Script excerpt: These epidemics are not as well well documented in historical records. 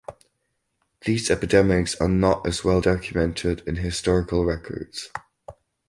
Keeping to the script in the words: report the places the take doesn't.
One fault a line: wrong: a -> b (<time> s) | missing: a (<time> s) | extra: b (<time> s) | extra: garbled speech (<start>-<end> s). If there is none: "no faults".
missing: well (2.8 s)